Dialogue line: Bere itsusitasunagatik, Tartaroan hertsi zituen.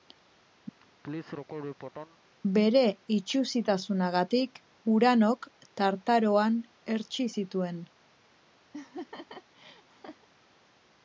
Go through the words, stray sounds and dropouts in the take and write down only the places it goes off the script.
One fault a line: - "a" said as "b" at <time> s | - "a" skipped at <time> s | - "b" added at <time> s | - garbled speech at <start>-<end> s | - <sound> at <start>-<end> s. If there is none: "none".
- laugh at 0.8-2.2 s
- "Uranok" added at 5.0 s
- laugh at 8.7-10.3 s